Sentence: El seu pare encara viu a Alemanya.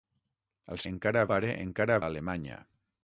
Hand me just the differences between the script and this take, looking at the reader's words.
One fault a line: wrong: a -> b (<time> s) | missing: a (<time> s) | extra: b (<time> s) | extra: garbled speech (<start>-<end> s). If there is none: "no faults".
wrong: seu -> encara (0.9 s)
missing: viu (2.0 s)